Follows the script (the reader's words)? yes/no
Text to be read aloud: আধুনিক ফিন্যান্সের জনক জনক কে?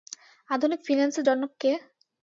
no